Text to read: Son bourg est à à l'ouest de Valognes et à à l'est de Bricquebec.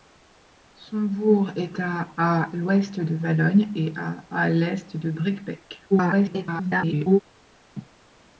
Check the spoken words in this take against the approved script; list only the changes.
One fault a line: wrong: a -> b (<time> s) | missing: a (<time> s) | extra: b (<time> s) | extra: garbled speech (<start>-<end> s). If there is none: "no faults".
extra: garbled speech (5.9-7.2 s)